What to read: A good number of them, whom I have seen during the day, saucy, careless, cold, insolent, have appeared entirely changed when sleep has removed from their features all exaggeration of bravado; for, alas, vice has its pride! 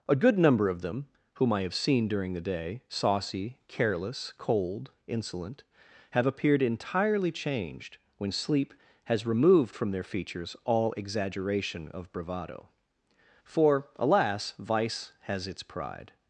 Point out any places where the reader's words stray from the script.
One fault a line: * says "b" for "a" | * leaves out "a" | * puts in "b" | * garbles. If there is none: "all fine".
all fine